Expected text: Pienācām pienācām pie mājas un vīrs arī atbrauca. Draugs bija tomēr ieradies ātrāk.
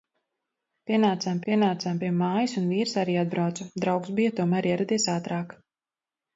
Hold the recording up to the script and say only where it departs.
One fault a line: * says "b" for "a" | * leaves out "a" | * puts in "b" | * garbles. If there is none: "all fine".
all fine